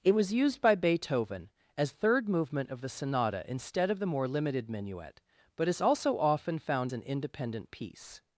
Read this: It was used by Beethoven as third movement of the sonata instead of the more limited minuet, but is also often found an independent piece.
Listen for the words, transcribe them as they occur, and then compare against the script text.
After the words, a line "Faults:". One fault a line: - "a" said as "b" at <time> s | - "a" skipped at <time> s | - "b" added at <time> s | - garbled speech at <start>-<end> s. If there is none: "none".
It was used by Beethoven as third movement of the sonata instead of the more limited minuet, but is also often found an independent piece.
Faults:
none